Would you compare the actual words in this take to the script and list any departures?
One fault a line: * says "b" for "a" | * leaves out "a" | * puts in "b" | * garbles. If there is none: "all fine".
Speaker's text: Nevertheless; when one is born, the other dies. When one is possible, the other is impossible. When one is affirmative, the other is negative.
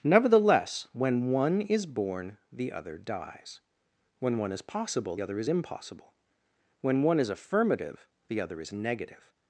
* leaves out "the"